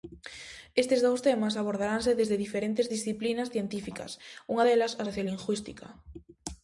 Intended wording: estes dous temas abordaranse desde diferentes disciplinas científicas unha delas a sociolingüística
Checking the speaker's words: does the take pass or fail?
pass